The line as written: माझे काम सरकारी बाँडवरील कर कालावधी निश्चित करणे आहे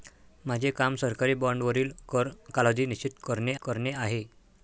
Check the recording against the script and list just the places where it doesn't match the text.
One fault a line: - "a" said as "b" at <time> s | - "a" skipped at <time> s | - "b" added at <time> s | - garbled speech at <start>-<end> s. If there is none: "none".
- "करणे" added at 3.6 s